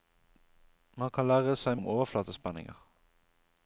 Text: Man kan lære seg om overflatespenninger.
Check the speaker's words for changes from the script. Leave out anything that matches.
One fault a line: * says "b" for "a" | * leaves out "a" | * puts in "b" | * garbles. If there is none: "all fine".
all fine